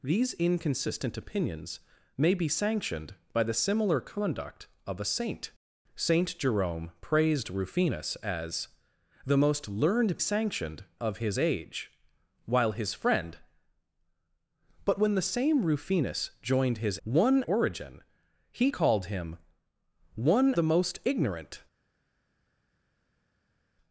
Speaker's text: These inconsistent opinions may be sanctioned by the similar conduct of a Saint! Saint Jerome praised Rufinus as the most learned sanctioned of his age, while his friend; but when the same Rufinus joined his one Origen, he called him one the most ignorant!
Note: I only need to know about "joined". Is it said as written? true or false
true